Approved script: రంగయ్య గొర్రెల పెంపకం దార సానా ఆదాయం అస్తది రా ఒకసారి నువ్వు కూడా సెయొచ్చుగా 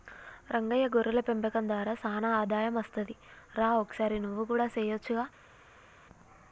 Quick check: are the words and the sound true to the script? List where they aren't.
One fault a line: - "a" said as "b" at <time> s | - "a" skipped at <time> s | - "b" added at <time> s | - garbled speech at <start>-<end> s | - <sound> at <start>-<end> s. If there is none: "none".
none